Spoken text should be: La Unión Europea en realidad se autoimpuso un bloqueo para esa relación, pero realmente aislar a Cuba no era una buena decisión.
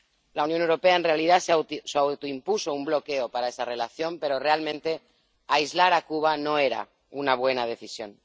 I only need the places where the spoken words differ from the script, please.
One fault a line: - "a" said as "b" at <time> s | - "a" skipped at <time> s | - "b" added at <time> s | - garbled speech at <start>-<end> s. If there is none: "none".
none